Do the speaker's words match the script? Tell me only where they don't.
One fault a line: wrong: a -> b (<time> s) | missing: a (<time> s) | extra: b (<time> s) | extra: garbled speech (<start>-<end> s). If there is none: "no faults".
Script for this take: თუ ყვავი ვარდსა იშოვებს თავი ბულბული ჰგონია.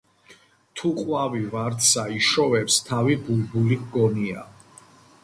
no faults